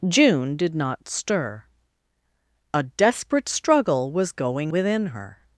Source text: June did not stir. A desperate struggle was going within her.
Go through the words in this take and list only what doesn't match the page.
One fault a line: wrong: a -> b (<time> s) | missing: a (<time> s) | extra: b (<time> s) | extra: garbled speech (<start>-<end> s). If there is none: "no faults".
no faults